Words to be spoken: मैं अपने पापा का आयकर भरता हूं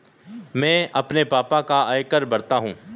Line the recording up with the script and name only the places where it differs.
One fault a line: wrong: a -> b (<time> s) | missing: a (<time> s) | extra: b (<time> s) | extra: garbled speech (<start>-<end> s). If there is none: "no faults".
no faults